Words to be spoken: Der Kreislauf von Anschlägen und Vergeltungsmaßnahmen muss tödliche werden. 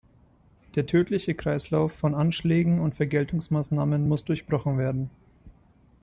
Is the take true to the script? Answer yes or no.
no